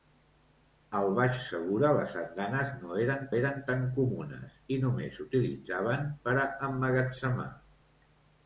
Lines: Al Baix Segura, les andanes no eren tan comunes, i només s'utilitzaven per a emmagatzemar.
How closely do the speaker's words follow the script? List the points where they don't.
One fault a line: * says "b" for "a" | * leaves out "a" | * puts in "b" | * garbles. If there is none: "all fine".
* puts in "eren"